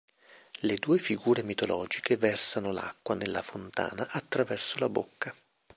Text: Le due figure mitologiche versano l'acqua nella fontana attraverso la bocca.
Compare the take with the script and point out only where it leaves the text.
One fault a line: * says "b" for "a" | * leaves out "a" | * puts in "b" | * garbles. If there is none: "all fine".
all fine